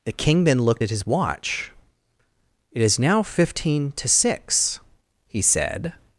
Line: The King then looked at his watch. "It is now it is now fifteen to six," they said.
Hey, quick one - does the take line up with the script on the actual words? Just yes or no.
no